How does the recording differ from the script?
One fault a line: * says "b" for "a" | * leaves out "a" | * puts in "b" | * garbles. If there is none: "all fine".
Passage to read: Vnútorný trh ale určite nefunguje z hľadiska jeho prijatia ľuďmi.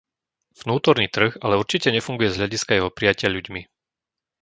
all fine